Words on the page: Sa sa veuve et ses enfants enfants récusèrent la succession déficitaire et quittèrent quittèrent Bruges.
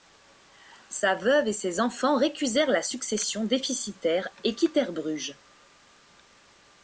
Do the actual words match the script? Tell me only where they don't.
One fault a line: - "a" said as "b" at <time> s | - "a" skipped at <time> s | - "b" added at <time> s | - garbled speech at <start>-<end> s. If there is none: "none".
- "sa" skipped at 1.1 s
- "enfants" skipped at 2.2 s
- "quittèrent" skipped at 4.9 s